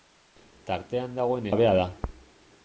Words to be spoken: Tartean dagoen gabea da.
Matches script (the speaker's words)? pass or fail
pass